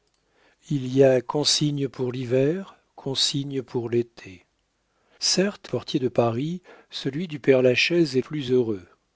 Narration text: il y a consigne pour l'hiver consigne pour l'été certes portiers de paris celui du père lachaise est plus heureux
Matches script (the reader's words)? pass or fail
pass